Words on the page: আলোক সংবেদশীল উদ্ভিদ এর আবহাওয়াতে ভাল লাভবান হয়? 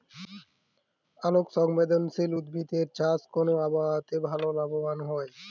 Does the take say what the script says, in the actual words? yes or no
no